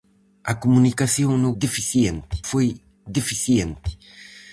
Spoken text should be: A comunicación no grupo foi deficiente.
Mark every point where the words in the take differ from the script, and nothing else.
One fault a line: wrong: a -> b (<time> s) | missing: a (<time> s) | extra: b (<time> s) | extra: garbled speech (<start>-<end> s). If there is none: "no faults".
wrong: grupo -> deficiente (1.6 s)